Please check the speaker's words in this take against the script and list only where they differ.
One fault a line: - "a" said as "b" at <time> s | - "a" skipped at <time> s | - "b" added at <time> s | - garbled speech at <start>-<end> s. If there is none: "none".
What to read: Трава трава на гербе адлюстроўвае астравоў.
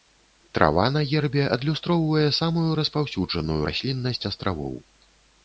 - "трава" skipped at 0.8 s
- "самую распаўсюджаную расліннасць" added at 2.4 s